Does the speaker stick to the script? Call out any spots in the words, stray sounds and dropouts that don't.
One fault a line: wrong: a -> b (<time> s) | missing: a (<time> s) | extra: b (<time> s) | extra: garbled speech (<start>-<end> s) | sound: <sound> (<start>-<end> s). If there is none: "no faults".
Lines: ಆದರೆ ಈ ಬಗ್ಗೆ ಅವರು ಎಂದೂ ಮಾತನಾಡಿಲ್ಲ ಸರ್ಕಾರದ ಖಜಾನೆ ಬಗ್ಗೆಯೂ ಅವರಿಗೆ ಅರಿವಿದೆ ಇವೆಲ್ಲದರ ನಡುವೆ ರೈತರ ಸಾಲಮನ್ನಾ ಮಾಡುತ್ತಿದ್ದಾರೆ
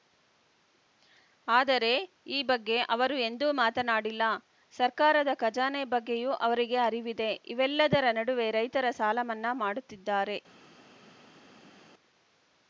no faults